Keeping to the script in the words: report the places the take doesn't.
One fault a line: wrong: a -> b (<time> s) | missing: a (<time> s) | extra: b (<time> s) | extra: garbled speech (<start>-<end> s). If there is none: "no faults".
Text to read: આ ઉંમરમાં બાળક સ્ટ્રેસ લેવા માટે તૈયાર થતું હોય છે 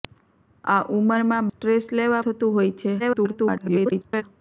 missing: બાળક (1.5 s)
missing: માટે તૈયાર (2.2 s)
extra: garbled speech (3.0-4.2 s)